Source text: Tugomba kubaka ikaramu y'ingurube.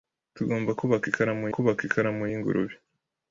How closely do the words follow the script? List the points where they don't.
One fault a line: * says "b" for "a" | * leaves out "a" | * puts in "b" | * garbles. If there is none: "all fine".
* puts in "kubaka ikaramu"